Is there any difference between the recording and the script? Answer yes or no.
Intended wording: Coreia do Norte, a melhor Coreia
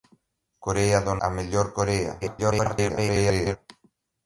yes